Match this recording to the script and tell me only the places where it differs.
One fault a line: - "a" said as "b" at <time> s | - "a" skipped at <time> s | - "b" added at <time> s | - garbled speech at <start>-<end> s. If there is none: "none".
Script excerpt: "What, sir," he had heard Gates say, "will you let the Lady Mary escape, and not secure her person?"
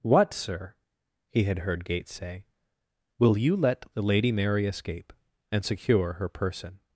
- "not" skipped at 5.6 s